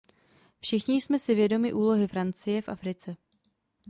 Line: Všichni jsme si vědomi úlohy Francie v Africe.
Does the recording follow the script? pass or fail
pass